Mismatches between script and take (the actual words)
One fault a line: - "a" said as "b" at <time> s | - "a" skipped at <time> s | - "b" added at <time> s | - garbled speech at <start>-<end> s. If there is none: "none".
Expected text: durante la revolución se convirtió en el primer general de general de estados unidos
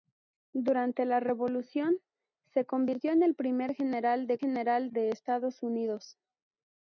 none